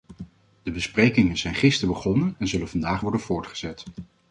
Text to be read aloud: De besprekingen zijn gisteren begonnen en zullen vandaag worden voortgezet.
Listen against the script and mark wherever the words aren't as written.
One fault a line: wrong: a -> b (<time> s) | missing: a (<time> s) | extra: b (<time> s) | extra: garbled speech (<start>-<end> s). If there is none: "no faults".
no faults